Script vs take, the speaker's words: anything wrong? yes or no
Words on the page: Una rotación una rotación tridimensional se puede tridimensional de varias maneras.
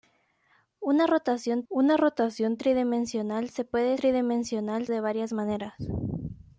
no